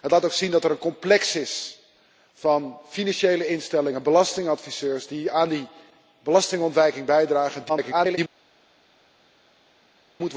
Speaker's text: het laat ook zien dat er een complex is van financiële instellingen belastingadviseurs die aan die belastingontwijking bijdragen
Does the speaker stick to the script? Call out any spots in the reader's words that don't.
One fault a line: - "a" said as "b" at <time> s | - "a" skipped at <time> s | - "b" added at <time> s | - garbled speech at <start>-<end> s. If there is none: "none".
- garbled speech at 7.7-8.2 s